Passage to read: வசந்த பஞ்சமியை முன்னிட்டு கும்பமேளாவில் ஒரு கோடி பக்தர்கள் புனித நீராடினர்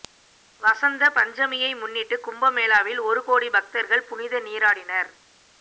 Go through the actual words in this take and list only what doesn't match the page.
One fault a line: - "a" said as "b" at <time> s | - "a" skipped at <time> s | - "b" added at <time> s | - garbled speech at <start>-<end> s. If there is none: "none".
none